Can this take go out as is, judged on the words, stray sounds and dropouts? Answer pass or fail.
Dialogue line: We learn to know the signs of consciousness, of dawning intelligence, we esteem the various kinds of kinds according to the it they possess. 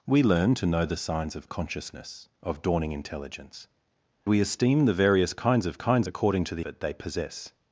pass